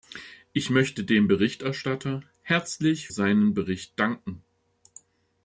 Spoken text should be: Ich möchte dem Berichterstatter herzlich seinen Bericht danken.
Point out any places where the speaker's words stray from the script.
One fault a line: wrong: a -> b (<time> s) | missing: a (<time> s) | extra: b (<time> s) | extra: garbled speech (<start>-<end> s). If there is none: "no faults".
no faults